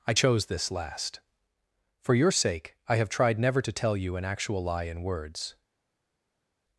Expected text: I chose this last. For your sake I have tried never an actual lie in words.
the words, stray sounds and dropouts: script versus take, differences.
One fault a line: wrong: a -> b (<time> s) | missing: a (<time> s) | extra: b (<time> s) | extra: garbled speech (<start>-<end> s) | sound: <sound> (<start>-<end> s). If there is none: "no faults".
extra: to tell you (3.6 s)